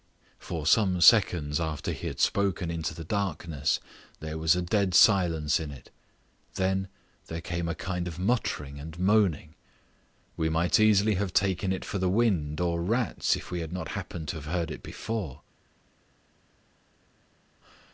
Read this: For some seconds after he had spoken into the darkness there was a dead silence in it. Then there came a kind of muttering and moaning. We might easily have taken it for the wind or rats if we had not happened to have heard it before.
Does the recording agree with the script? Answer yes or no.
yes